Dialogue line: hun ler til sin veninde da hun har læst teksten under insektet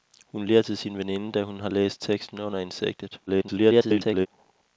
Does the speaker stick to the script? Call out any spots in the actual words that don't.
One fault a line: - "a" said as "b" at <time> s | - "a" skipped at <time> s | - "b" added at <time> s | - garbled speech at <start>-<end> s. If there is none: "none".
- garbled speech at 3.3-4.3 s